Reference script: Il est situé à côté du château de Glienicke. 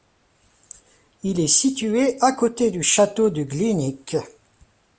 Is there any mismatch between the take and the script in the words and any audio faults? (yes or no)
no